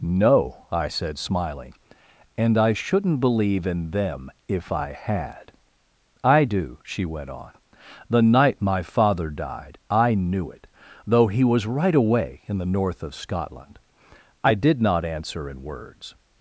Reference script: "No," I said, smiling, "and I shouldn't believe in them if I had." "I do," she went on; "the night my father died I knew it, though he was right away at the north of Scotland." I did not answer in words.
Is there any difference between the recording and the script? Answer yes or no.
yes